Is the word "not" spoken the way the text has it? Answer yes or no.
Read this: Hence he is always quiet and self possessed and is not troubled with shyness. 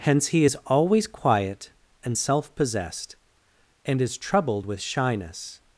no